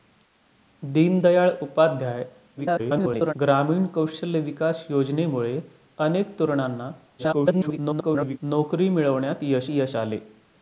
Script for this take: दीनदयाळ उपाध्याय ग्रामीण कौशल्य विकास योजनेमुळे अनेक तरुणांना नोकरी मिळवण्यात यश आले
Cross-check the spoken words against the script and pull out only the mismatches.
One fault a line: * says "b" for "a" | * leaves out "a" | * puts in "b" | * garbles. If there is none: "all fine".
* garbles
* garbles
* puts in "यश"